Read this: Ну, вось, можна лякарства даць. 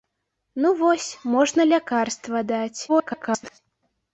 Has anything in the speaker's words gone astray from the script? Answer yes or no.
yes